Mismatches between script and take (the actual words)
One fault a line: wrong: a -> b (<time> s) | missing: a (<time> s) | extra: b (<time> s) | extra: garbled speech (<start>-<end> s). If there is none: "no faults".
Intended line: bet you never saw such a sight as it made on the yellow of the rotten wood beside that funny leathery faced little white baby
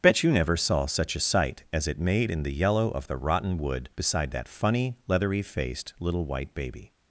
wrong: on -> in (2.3 s)